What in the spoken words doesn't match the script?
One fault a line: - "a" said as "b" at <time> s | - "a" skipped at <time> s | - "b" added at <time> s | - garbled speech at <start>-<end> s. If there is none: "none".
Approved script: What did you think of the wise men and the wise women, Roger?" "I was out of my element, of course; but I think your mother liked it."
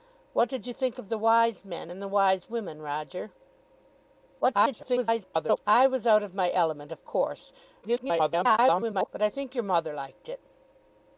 - garbled speech at 4.4-5.6 s
- garbled speech at 7.8-9.1 s